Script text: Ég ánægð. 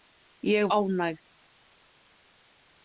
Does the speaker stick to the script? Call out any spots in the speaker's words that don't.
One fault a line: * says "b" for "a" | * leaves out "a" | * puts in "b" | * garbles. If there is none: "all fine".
all fine